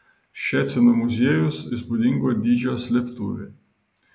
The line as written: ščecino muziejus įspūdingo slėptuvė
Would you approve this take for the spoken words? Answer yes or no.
no